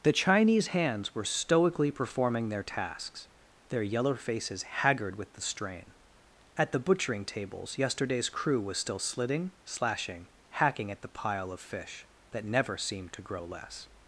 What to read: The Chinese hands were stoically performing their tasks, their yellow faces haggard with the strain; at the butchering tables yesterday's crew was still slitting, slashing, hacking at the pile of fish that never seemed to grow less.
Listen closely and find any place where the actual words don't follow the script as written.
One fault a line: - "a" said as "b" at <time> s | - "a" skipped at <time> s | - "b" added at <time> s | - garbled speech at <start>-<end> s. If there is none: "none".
none